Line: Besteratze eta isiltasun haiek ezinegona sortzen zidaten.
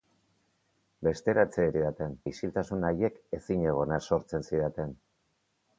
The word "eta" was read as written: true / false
false